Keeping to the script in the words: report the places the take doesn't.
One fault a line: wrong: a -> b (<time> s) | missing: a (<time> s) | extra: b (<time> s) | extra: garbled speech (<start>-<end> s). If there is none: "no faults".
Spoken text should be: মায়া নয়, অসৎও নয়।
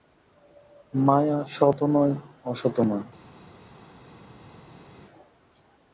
extra: সৎও (1.6 s)